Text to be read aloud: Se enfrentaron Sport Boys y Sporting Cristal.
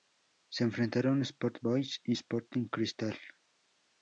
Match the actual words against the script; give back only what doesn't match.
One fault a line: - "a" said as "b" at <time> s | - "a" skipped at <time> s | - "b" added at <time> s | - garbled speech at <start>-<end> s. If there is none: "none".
none